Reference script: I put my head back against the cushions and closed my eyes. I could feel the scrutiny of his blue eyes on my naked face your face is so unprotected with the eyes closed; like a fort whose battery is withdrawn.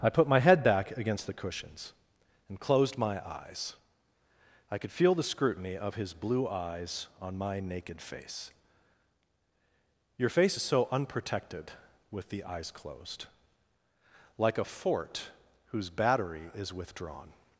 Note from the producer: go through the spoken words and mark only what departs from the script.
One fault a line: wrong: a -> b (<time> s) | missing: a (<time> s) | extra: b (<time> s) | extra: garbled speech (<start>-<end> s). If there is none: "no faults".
no faults